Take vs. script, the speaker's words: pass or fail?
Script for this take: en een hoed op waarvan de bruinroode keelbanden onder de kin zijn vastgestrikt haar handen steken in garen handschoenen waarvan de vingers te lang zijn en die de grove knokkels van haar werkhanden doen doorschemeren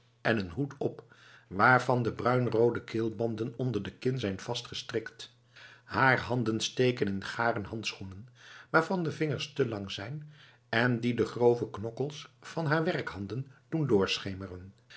pass